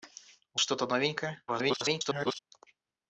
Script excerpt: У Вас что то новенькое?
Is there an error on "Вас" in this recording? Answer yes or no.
yes